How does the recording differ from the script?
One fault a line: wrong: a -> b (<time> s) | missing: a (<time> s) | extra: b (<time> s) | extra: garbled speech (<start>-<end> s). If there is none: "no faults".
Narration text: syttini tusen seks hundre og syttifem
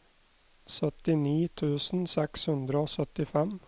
no faults